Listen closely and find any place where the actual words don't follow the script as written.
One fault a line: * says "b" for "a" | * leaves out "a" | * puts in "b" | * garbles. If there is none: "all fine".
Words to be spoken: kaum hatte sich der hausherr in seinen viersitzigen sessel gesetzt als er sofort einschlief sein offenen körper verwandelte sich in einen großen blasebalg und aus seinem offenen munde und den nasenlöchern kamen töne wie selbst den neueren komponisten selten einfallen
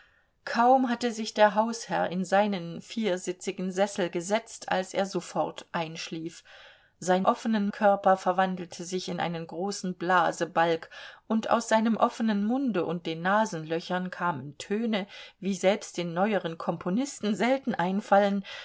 all fine